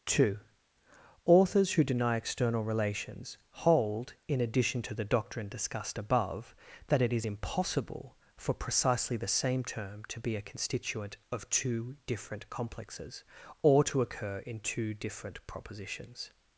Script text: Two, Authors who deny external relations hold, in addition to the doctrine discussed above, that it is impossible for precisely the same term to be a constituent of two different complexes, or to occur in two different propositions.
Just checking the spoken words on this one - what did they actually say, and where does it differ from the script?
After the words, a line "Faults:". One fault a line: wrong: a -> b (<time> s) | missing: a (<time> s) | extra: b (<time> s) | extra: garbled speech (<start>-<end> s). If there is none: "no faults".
Two, Authors who deny external relations hold, in addition to the doctrine discussed above, that it is impossible for precisely the same term to be a constituent of two different complexes, or to occur in two different propositions.
Faults:
no faults